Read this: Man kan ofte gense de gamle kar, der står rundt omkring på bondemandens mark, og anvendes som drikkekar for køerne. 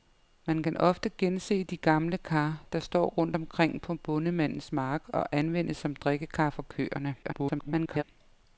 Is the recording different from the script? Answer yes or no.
yes